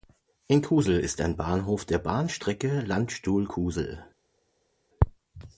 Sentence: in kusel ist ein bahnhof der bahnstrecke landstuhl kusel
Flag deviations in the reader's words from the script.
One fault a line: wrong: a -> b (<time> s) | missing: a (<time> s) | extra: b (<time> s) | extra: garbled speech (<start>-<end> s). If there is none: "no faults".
no faults